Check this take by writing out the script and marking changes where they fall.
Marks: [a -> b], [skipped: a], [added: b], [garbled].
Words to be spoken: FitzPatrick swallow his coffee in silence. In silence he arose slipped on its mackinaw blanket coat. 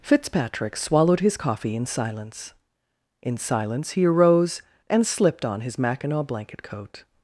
FitzPatrick [swallow -> swallowed] his coffee in silence. In silence he arose [added: and] slipped on [its -> his] mackinaw blanket coat.